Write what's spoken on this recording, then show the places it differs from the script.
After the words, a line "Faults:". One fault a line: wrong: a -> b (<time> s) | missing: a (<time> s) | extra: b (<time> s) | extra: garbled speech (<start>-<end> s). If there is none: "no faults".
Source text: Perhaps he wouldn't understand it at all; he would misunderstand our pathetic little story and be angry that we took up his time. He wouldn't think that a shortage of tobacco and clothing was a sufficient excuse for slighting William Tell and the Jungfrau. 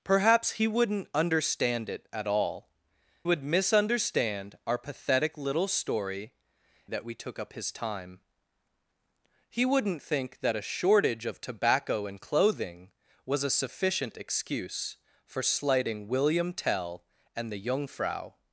Perhaps he wouldn't understand it at all; would misunderstand our pathetic little story that we took up his time. He wouldn't think that a shortage of tobacco and clothing was a sufficient excuse for slighting William Tell and the Jungfrau.
Faults:
missing: he (2.7 s)
missing: and be angry (6.3 s)